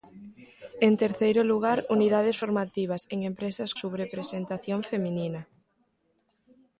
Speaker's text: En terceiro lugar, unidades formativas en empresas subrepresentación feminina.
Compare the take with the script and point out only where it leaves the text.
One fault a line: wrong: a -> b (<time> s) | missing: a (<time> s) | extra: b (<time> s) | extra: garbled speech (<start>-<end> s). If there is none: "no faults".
no faults